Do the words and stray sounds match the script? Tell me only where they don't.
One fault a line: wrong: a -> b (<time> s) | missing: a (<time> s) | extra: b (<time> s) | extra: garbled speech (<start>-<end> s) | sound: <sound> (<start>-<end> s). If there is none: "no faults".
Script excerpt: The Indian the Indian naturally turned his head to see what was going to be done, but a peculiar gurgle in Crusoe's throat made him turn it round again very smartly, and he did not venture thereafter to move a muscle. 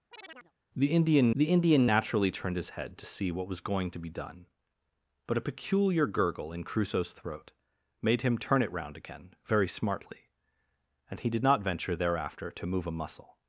sound: chirp (0.1-0.5 s)